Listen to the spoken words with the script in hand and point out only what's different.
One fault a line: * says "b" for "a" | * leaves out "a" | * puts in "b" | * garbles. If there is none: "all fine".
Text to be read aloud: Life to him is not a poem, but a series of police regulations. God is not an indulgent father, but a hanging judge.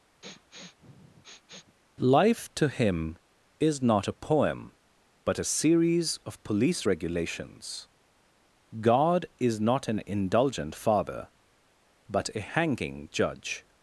all fine